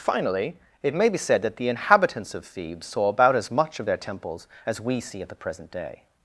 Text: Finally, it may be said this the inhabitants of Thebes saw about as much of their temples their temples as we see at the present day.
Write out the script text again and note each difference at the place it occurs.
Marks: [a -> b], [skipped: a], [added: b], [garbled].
Finally, it may be said [this -> that] the inhabitants of Thebes saw about as much of their temples [skipped: their temples] as we see at the present day.